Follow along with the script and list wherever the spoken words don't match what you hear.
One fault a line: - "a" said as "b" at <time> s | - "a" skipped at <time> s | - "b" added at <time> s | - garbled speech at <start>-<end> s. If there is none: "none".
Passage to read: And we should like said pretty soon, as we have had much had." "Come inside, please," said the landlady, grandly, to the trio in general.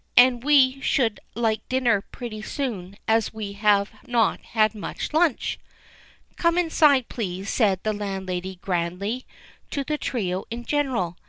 - "said" said as "dinner" at 1.7 s
- "not" added at 4.1 s
- "had" said as "lunch" at 5.1 s